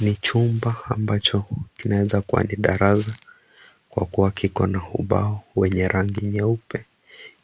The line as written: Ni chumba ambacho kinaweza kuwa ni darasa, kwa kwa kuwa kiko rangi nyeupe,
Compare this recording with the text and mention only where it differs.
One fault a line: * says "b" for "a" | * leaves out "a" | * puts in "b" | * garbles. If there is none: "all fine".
* leaves out "kwa"
* puts in "na ubao wenye"